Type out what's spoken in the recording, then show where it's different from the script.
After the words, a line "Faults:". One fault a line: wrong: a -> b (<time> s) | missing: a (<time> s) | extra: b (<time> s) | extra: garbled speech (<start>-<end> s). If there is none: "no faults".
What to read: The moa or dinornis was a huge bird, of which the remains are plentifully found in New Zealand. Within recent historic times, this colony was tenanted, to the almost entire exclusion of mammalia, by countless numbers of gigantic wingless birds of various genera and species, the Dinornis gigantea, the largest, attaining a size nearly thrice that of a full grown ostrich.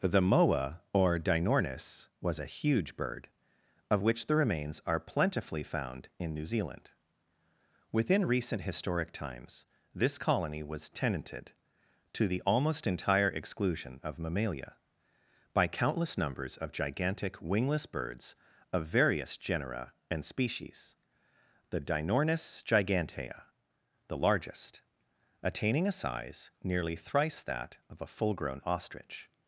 The moa or dinornis was a huge bird, of which the remains are plentifully found in New Zealand. Within recent historic times, this colony was tenanted, to the almost entire exclusion of mammalia, by countless numbers of gigantic wingless birds of various genera and species, the Dinornis gigantea, the largest, attaining a size nearly thrice that of a full grown ostrich.
Faults:
no faults